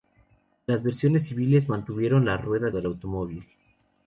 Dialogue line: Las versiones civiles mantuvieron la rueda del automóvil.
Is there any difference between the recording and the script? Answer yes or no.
no